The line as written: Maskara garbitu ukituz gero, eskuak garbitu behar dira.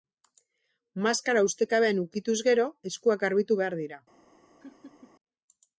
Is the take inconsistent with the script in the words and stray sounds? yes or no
yes